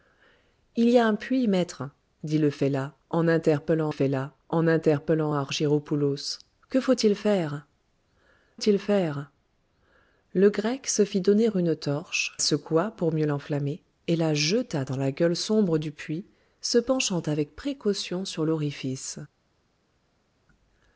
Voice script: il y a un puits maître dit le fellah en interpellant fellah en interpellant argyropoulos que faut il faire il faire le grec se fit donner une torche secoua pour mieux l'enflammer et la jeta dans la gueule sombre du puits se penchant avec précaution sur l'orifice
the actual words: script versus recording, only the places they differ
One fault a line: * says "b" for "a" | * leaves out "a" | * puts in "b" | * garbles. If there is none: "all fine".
all fine